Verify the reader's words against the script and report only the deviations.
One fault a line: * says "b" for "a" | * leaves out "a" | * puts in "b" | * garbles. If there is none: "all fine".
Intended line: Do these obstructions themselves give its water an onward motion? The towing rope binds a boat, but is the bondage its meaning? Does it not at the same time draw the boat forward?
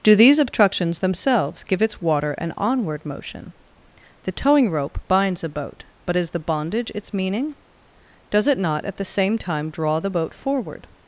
all fine